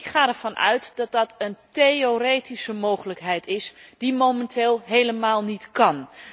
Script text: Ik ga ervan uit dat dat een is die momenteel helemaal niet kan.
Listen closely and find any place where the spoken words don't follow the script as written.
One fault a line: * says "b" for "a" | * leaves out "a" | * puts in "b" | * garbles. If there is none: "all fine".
* puts in "theoretische mogelijkheid"